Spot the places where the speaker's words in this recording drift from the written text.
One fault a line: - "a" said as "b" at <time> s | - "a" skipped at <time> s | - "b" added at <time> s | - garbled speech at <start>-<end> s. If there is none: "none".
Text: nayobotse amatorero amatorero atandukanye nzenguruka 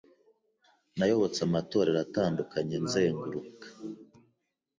- "amatorero" skipped at 2.0 s